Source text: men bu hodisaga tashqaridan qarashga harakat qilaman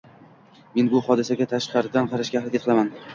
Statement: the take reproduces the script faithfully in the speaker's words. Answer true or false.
true